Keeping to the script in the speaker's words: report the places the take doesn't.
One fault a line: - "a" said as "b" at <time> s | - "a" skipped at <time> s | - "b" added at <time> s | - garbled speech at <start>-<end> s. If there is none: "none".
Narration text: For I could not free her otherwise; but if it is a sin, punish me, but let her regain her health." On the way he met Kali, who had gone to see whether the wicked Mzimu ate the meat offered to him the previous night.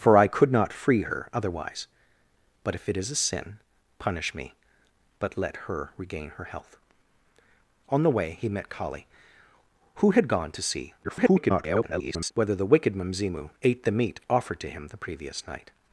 - garbled speech at 11.0-12.3 s